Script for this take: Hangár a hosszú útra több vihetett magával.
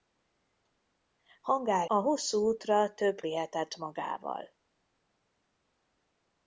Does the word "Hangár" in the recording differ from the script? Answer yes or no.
no